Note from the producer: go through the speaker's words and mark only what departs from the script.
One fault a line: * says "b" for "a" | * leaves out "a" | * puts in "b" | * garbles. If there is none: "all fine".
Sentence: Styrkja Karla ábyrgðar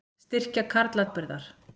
all fine